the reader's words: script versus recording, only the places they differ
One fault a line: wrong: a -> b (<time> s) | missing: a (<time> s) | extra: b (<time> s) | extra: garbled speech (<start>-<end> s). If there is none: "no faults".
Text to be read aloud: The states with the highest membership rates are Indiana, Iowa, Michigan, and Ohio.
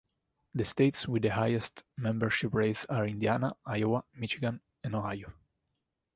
no faults